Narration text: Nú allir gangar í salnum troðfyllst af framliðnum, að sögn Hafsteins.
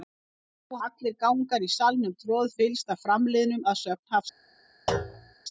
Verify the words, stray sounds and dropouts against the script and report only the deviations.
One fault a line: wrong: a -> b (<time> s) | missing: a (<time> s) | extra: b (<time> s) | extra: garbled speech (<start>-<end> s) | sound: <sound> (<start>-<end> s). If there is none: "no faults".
sound: thud (4.9-5.3 s)